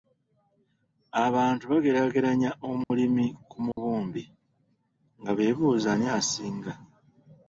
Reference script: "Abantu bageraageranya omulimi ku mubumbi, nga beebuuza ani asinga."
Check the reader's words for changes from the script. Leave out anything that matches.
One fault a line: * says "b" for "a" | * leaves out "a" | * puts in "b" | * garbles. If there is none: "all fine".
all fine